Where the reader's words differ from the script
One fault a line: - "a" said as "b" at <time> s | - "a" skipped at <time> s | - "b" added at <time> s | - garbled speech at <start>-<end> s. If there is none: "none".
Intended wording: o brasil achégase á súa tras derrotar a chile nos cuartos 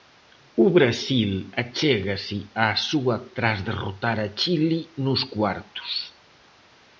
none